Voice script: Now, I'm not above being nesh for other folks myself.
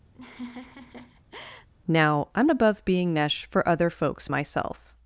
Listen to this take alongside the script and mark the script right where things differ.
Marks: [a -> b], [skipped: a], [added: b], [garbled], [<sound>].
[laugh] Now, I'm [skipped: not] above being nesh for other folks myself.